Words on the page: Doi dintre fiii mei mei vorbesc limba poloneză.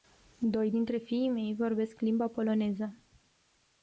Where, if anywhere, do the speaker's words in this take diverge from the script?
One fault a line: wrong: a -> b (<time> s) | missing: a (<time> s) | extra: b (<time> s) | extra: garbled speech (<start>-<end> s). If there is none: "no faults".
missing: mei (1.5 s)